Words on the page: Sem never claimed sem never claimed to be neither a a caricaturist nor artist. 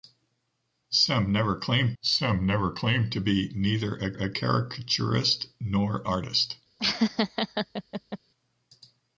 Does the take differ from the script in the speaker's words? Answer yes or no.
no